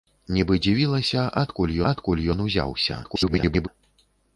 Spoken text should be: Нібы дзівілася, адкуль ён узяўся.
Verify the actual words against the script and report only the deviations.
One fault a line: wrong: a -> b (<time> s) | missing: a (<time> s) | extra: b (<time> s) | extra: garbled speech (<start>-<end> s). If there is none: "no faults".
extra: адкуль (1.9 s)
extra: garbled speech (3.0-3.7 s)